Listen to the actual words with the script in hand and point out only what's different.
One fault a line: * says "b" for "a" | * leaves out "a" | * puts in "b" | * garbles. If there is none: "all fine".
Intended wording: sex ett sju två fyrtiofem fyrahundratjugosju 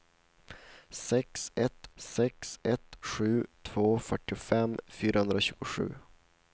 * puts in "sex ett"